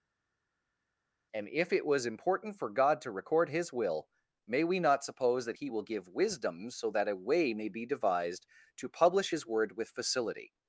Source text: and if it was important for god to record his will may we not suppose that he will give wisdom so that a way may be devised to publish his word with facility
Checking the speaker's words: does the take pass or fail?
pass